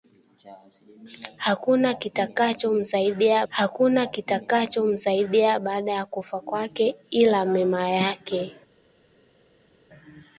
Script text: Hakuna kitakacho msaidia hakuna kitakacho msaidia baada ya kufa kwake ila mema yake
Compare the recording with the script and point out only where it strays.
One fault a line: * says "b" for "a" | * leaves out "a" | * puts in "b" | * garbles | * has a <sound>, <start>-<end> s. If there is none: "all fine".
all fine